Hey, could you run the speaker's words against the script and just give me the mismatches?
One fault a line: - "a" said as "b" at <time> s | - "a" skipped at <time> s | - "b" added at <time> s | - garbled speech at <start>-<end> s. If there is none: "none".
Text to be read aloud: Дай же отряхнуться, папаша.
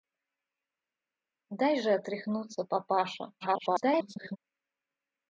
- garbled speech at 3.4-4.4 s